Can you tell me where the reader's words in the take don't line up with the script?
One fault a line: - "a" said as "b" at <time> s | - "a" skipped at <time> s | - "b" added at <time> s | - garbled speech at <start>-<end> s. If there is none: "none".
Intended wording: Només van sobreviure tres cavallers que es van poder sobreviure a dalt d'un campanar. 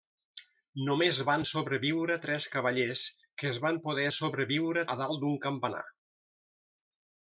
none